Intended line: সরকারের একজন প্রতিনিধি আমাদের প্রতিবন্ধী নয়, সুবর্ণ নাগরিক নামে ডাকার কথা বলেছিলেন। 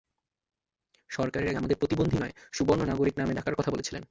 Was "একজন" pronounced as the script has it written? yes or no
no